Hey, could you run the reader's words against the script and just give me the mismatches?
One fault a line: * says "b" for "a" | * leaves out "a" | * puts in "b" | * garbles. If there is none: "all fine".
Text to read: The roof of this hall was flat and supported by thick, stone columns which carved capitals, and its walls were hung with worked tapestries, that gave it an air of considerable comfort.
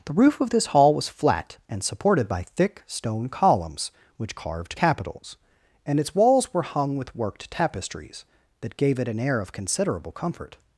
all fine